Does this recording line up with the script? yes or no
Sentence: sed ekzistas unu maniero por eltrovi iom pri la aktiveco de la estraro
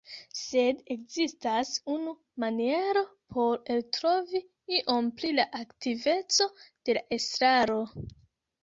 yes